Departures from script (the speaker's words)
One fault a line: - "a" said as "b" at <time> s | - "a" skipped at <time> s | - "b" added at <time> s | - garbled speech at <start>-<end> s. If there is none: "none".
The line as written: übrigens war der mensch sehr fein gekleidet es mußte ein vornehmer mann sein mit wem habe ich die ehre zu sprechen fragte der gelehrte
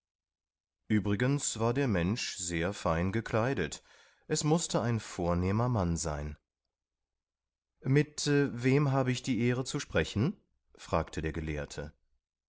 none